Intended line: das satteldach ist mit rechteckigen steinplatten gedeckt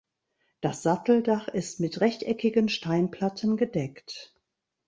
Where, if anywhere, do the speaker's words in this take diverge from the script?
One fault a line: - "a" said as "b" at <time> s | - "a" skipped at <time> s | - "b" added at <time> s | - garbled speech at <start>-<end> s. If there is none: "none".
none